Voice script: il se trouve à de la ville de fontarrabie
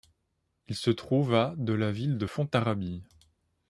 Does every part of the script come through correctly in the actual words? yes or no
yes